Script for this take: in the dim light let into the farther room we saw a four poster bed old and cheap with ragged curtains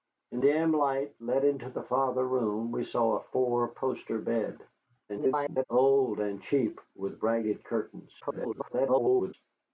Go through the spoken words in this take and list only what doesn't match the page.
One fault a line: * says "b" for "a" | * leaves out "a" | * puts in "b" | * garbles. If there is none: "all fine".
* leaves out "the"
* garbles
* garbles